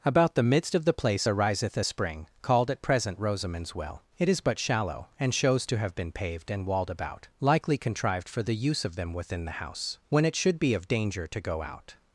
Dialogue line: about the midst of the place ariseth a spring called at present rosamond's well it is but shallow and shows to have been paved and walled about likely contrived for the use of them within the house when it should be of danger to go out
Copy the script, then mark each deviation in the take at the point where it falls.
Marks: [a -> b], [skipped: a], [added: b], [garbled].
about the midst of the place ariseth a spring called at present rosamond's well it is but shallow and shows to have been paved and walled about likely contrived for the use of them within the house when it should be of danger to go out